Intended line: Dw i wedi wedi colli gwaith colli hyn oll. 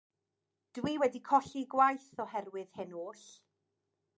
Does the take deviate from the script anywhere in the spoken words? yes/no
yes